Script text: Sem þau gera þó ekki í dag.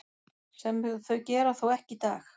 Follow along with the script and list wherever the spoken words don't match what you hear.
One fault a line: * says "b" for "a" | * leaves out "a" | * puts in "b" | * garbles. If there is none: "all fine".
all fine